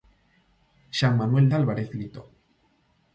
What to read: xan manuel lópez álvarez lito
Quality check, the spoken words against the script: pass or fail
fail